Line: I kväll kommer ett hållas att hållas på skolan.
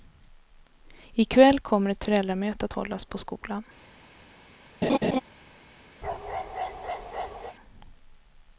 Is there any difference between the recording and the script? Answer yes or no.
yes